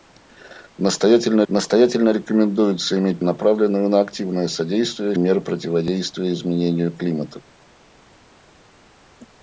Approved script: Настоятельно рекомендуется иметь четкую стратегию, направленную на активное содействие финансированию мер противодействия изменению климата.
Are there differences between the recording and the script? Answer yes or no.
yes